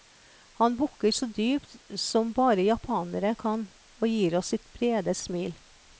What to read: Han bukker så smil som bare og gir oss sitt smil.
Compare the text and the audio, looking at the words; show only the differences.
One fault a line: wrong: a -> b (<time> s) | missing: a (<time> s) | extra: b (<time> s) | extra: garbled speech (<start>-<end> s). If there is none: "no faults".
wrong: smil -> dypt (1.2 s)
extra: japanere kan (2.6 s)
extra: brede (4.7 s)